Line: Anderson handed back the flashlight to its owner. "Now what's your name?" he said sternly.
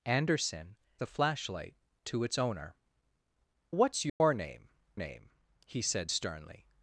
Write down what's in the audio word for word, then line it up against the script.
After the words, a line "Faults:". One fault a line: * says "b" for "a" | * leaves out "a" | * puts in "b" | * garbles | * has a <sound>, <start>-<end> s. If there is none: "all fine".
Anderson the flashlight to its owner. "What's your name name?" he said sternly.
Faults:
* leaves out "handed back"
* leaves out "Now"
* has a dropout, 4.1-4.2 s
* puts in "name"